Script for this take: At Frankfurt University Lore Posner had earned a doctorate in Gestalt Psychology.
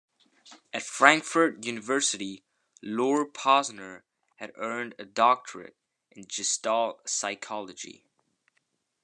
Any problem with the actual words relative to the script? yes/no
no